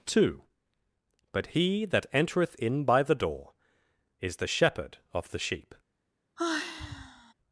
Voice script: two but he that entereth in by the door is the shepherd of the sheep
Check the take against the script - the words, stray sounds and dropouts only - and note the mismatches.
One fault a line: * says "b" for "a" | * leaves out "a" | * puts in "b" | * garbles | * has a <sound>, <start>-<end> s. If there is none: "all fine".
* has a sigh, 6.4-7.3 s